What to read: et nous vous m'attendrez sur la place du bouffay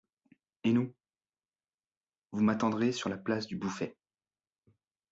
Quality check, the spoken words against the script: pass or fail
pass